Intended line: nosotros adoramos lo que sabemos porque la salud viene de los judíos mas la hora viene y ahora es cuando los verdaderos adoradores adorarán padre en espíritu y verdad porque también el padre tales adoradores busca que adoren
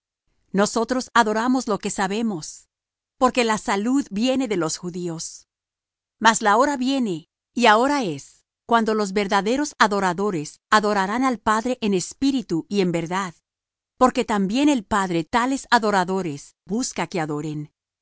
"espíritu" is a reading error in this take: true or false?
false